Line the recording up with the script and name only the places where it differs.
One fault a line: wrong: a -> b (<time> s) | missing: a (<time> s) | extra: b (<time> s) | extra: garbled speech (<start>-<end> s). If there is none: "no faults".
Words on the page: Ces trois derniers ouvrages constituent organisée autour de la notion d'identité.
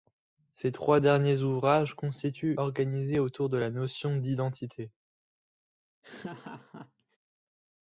no faults